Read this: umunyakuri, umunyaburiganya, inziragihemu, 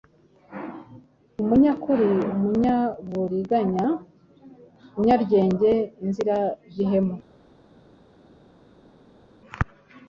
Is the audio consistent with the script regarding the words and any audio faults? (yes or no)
no